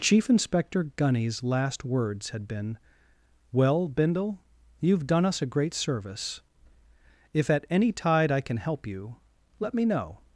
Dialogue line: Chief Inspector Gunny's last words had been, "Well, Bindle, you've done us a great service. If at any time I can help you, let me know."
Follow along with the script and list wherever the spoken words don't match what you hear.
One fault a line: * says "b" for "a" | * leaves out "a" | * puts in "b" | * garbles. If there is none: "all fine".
* says "tide" for "time"